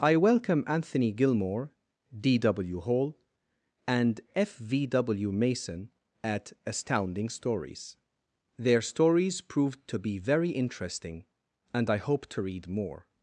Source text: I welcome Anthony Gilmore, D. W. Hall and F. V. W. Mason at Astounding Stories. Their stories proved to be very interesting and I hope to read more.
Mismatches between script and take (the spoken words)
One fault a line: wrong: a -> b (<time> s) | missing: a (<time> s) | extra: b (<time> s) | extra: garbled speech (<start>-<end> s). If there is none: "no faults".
no faults